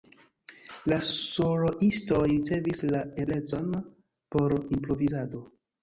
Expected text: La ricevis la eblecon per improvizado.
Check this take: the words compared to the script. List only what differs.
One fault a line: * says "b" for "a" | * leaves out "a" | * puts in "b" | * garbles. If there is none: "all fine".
* puts in "soloistoj"
* says "por" for "per"